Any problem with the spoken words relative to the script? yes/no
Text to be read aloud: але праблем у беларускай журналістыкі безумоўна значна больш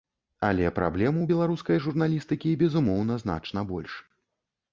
no